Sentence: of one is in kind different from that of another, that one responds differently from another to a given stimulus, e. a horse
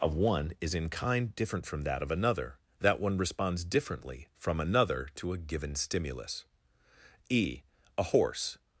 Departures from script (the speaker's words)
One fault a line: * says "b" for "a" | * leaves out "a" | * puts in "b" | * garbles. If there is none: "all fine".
all fine